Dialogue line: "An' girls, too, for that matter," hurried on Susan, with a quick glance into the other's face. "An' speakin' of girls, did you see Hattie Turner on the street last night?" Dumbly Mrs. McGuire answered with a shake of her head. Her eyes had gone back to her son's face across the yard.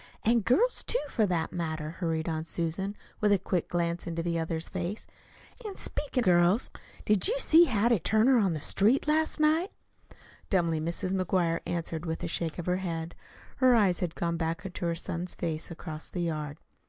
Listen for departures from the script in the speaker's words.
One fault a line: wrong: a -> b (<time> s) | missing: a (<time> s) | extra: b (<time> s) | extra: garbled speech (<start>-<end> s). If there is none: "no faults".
missing: of (6.2 s)